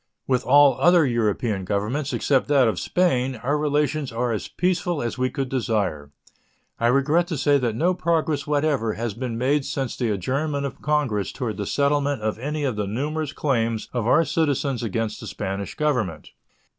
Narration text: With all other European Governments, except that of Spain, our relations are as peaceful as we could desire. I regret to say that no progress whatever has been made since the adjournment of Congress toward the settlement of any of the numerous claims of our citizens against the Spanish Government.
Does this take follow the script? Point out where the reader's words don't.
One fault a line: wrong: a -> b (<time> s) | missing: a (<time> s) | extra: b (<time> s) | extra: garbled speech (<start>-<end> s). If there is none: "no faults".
no faults